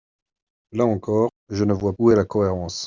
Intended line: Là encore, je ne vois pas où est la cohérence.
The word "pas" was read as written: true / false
false